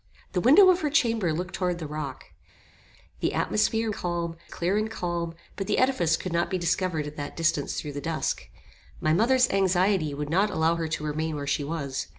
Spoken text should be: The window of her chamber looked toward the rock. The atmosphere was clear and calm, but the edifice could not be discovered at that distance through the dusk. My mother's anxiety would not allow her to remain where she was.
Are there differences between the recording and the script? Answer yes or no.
yes